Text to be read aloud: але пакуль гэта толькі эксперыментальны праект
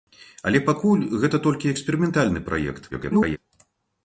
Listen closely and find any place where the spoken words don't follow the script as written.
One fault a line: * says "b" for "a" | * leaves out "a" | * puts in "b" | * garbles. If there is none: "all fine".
* garbles